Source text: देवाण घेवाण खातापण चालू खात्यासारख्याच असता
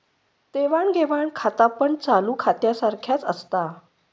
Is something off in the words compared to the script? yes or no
no